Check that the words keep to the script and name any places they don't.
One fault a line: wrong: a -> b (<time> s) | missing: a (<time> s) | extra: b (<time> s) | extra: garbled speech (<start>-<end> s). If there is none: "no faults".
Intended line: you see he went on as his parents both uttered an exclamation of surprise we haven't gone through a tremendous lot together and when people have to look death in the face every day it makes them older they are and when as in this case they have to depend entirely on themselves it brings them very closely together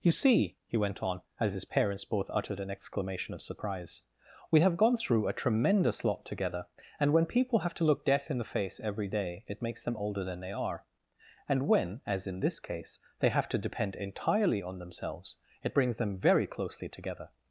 wrong: haven't -> have (4.6 s)
extra: than (10.2 s)